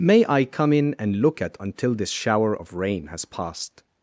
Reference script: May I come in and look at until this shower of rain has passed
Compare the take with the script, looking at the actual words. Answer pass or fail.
pass